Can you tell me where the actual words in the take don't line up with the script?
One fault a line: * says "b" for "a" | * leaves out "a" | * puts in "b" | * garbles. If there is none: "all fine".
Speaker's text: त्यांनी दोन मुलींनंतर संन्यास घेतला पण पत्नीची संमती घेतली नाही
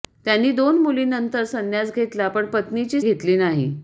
* leaves out "संमती"